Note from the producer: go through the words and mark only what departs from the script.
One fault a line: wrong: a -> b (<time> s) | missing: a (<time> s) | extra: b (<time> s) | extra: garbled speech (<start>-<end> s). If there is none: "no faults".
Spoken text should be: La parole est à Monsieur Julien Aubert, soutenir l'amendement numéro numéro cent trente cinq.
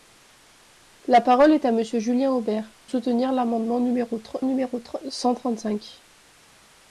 no faults